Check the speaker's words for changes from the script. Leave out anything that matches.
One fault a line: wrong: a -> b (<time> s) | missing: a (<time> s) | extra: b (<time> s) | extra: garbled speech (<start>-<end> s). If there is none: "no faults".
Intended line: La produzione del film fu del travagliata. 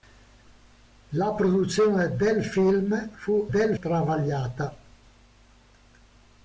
no faults